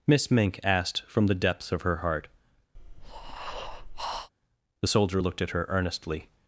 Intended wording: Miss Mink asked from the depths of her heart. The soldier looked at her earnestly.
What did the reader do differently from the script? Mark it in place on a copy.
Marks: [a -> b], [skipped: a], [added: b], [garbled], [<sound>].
Miss Mink asked from the depths of her heart. [breath] The soldier looked at her earnestly.